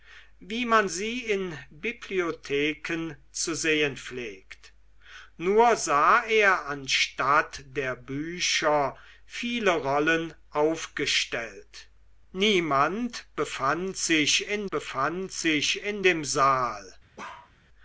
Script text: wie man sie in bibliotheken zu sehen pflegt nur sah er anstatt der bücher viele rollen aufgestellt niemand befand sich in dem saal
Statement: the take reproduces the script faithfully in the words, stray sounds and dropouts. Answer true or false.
false